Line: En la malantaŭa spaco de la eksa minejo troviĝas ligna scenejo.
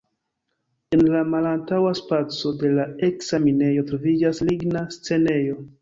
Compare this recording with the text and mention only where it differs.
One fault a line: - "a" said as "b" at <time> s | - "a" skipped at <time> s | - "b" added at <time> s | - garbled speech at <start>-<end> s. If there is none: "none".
none